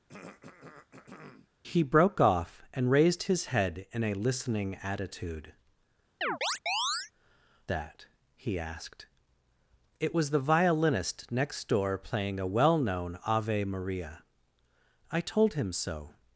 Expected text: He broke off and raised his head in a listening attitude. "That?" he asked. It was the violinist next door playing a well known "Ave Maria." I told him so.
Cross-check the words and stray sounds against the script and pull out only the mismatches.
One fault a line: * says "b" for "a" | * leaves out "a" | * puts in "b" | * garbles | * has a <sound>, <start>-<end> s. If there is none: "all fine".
* has a throat clearing, 0.1-1.5 s
* has a chirp, 6.2-7.1 s